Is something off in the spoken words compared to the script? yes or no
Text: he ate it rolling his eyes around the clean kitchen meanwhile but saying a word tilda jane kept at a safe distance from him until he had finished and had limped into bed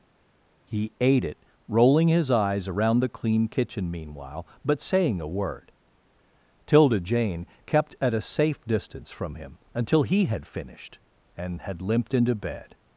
no